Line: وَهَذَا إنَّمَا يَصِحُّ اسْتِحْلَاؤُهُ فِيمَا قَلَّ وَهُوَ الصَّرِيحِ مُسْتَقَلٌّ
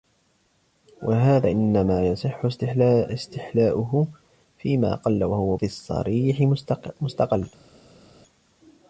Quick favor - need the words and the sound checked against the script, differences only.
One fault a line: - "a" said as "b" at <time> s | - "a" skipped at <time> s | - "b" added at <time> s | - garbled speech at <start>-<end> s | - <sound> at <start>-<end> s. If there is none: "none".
none